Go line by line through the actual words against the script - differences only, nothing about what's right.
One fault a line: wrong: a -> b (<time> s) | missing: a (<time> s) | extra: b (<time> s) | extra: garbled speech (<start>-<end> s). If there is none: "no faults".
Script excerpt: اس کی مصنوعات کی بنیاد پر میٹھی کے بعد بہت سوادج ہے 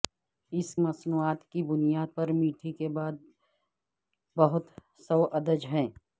missing: کی (0.8 s)